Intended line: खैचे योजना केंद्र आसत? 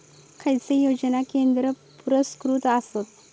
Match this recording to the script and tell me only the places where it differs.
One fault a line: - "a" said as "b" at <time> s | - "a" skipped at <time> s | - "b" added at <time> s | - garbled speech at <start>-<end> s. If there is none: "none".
- "पुरस्कृत" added at 2.1 s